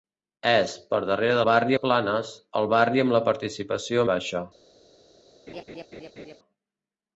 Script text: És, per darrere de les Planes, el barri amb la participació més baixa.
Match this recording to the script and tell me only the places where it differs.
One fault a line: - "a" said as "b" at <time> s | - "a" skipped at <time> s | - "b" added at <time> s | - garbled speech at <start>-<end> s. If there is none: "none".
- "les" said as "barri" at 1.5 s
- "més" skipped at 4.0 s